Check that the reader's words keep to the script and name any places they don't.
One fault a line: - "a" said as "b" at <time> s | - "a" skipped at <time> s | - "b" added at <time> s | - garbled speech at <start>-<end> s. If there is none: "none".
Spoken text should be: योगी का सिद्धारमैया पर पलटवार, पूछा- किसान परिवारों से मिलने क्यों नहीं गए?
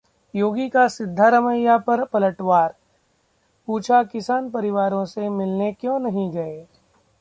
none